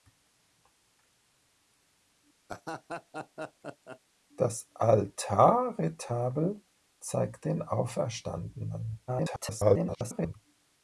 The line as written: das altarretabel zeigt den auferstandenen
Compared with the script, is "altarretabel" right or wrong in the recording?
right